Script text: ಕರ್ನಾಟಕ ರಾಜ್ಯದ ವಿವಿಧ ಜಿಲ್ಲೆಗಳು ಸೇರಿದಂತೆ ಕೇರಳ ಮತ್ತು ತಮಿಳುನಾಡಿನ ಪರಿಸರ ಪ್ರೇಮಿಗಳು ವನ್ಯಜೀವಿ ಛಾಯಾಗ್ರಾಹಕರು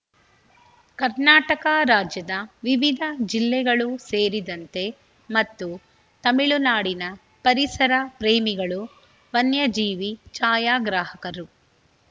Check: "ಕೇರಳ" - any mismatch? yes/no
yes